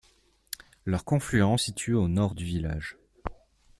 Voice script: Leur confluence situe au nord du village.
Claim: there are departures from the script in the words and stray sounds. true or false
false